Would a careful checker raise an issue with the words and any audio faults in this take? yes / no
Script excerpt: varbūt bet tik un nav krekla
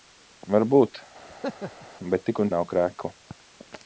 yes